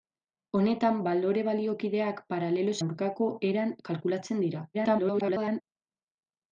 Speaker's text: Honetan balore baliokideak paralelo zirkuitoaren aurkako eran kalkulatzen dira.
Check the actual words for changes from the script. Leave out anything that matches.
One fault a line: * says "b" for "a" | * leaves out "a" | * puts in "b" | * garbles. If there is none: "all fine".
* leaves out "zirkuitoaren"
* garbles